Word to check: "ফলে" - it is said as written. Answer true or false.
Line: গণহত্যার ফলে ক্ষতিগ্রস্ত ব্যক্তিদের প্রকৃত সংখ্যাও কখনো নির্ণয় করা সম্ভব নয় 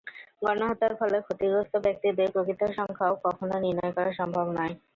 true